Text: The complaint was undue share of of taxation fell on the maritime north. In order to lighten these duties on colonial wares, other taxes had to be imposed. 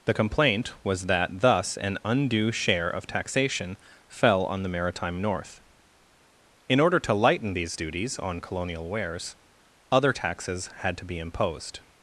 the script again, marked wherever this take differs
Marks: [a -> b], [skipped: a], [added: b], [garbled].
The complaint was [added: that thus an] undue share of [skipped: of] taxation fell on the maritime north. In order to lighten these duties on colonial wares, other taxes had to be imposed.